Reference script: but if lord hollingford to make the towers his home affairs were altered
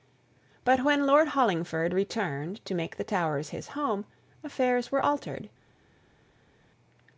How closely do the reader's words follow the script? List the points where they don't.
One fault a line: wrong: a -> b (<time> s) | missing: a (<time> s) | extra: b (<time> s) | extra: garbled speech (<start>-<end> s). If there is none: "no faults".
wrong: if -> when (0.8 s)
extra: returned (1.9 s)